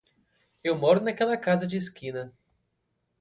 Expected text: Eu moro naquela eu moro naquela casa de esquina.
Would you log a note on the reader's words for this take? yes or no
yes